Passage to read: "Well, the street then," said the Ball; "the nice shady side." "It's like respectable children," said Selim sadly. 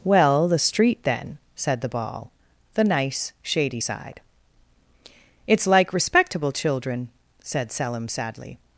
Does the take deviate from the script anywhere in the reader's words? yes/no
no